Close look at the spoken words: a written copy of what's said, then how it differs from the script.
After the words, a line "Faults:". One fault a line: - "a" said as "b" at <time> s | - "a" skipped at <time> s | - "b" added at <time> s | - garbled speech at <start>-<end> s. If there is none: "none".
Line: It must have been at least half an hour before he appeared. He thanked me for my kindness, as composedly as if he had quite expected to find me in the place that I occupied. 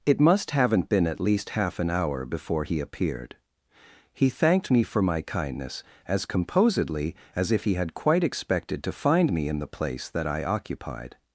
It must haven't been at least half an hour before he appeared. He thanked me for my kindness, as composedly as if he had quite expected to find me in the place that I occupied.
Faults:
- "have" said as "haven't" at 0.5 s